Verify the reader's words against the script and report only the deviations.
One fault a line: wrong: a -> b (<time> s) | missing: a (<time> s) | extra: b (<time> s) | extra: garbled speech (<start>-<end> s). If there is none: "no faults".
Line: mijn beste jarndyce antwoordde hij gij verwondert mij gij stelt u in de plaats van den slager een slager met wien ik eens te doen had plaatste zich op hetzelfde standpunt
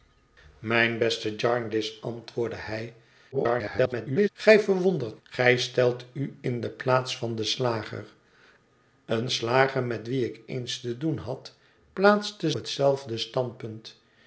extra: garbled speech (3.3-4.3 s)
missing: mij (5.2 s)
missing: zich op (12.5 s)